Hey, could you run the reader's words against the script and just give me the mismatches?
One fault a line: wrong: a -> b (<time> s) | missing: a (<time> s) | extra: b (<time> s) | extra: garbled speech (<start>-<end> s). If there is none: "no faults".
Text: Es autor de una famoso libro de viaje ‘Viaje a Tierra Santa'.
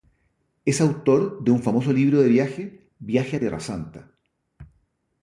wrong: una -> un (1.5 s)